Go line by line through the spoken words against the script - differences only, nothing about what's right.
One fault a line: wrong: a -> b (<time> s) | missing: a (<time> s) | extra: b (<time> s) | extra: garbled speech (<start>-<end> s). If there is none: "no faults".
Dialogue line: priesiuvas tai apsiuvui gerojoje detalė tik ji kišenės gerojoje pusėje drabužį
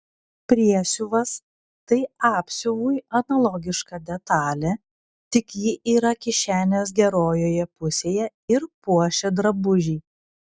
wrong: gerojoje -> analogiška (3.2 s)
extra: yra (6.0 s)
extra: ir puošia (8.6 s)